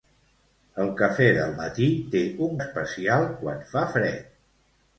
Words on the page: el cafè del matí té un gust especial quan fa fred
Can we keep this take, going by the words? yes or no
no